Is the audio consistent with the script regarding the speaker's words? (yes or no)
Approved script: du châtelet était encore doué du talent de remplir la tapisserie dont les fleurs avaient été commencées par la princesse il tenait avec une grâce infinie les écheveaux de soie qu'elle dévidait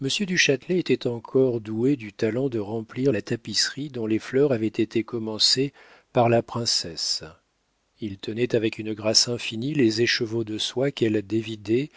yes